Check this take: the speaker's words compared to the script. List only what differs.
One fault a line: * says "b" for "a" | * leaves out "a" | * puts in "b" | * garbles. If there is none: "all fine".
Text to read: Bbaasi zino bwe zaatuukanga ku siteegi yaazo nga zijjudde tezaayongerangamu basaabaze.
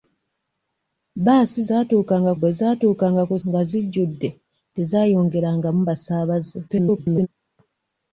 * says "zaatuukanga" for "zino"
* leaves out "siteegi yaazo"
* garbles